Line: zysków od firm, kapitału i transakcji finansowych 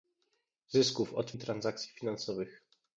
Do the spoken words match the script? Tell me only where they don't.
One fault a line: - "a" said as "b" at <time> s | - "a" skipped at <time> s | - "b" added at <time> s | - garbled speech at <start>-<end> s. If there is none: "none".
- "firm kapitału" skipped at 1.3 s